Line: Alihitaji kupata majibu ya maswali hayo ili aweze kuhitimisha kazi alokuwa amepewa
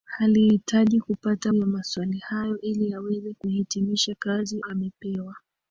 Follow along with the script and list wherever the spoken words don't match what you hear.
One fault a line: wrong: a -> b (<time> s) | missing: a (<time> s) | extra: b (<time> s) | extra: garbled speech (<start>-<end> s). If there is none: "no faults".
missing: majibu (1.5 s)
missing: alokuwa (4.6 s)